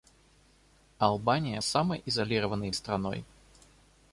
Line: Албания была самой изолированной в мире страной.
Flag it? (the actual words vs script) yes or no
yes